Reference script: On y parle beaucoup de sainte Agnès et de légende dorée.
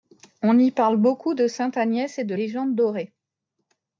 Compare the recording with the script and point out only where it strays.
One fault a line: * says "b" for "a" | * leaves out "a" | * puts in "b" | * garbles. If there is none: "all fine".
all fine